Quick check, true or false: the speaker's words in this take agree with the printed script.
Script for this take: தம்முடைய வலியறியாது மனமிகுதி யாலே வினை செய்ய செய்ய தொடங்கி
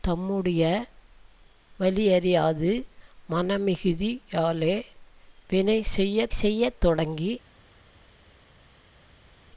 true